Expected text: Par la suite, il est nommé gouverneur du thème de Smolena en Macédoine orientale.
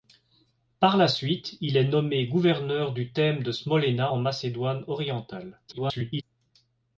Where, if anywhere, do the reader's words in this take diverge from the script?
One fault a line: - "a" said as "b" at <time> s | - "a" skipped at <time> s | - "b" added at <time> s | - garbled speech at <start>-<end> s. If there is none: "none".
- garbled speech at 5.7-6.2 s